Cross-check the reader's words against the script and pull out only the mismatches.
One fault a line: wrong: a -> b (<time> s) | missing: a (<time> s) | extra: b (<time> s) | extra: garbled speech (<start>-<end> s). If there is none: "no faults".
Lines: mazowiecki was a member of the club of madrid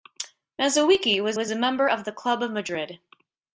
extra: was (1.3 s)